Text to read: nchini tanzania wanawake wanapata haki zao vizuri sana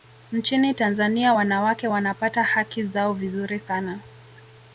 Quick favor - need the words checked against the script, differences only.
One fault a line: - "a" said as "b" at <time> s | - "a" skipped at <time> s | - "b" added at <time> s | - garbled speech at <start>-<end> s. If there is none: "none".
none